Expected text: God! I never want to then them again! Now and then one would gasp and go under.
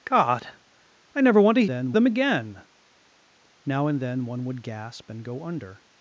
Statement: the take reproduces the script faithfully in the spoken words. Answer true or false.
true